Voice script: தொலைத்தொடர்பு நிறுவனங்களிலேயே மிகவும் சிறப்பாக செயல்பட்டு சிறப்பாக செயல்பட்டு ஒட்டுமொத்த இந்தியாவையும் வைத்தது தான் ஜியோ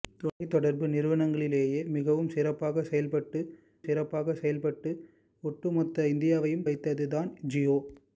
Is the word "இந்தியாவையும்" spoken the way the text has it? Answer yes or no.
yes